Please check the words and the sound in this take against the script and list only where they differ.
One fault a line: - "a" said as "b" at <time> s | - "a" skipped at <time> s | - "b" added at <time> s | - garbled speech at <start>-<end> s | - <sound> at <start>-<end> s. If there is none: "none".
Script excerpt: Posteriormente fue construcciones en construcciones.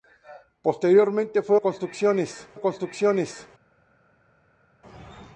none